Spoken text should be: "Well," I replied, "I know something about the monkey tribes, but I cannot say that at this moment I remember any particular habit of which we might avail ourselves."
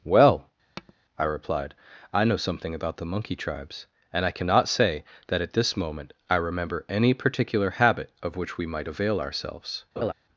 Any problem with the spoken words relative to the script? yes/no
yes